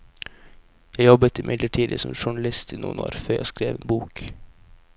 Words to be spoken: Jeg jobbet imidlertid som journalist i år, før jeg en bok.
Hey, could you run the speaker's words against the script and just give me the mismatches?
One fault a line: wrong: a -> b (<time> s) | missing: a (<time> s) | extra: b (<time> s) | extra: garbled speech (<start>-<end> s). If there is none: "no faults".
extra: noen (2.8 s)
extra: skrev (3.5 s)